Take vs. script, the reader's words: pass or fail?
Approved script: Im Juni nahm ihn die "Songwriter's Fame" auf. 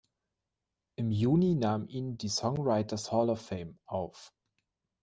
fail